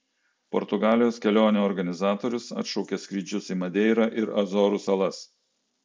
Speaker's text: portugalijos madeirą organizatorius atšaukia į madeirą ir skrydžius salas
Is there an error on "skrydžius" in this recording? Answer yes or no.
yes